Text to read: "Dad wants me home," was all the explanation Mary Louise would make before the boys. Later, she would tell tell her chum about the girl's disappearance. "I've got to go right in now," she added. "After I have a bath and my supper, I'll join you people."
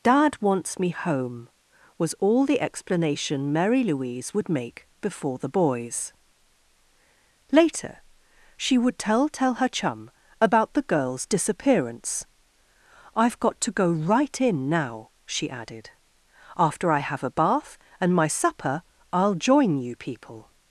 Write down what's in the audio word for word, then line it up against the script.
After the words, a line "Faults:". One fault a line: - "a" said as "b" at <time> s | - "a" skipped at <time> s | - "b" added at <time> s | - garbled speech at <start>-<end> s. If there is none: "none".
"Dad wants me home," was all the explanation Mary Louise would make before the boys. Later, she would tell tell her chum about the girl's disappearance. "I've got to go right in now," she added. "After I have a bath and my supper, I'll join you people."
Faults:
none